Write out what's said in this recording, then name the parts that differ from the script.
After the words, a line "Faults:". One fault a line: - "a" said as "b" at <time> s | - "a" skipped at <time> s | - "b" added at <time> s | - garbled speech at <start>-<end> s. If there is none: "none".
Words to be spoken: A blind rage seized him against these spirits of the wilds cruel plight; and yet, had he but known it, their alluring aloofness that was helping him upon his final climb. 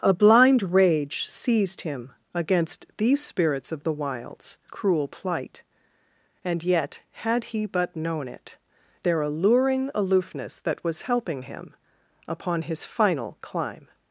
A blind rage seized him against these spirits of the wilds cruel plight; and yet, had he but known it, their alluring aloofness that was helping him upon his final climb.
Faults:
none